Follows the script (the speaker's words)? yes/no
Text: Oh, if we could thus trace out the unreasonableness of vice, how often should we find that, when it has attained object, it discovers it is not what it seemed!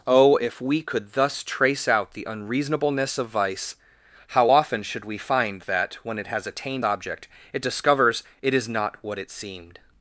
yes